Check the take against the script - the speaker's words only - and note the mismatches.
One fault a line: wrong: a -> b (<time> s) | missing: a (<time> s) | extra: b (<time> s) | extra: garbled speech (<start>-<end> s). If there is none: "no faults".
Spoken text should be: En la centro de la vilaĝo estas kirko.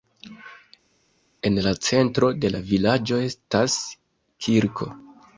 no faults